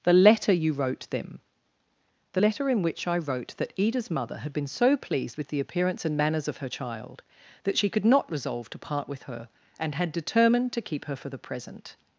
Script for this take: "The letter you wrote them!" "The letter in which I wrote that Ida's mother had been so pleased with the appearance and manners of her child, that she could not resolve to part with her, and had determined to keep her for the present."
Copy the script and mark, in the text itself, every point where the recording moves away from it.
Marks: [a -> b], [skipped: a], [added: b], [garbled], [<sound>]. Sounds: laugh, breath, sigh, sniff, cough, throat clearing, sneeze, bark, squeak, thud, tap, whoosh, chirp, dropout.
"The letter you wrote them!" "The letter in which I wrote that Ida's mother had been so pleased with the appearance and manners of her child, that she could not resolve to part with her, and had determined to keep her for the present."